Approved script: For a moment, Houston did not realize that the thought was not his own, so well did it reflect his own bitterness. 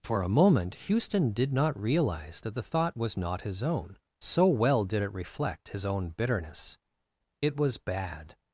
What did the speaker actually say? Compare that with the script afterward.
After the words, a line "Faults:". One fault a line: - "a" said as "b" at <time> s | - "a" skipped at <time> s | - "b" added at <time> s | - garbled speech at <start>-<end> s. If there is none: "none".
For a moment, Houston did not realize that the thought was not his own, so well did it reflect his own bitterness. It was bad
Faults:
- "It was bad" added at 7.4 s